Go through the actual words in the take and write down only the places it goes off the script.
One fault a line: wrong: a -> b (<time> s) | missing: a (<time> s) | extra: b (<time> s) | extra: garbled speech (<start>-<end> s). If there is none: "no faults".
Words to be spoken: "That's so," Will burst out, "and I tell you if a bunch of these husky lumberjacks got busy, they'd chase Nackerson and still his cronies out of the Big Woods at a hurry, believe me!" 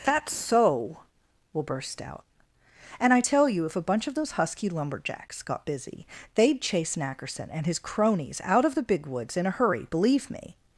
wrong: these -> those (4.1 s)
missing: still (7.7 s)
wrong: at -> in (9.3 s)